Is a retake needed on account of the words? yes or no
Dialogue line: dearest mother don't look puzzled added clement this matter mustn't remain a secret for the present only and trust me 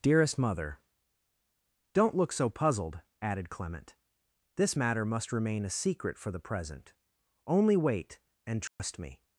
yes